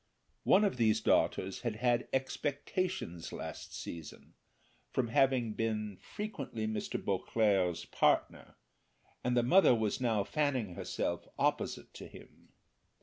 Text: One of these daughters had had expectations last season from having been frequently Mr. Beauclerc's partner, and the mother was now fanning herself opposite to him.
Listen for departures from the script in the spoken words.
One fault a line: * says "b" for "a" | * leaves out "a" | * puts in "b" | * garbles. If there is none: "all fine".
all fine